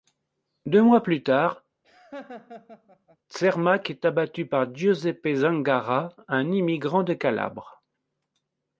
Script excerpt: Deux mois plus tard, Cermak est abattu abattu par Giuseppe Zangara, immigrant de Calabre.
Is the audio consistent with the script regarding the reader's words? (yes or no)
no